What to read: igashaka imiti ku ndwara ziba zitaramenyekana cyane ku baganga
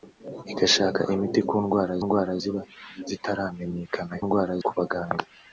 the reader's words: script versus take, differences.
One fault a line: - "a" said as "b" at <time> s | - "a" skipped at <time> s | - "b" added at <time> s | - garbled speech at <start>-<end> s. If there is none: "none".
- "ndwara" added at 2.0 s
- "cyane" said as "ndwara" at 4.2 s